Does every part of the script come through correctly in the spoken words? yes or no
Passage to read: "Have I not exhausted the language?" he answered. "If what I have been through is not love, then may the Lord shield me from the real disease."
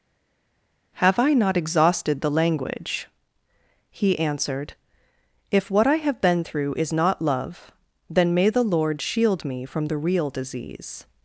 yes